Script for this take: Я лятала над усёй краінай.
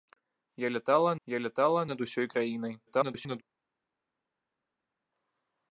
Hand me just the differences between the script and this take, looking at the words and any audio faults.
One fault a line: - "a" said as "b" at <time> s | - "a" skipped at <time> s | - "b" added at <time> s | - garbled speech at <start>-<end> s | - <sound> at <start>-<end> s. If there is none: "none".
- "я лятала" added at 1.2 s
- garbled speech at 2.9-3.4 s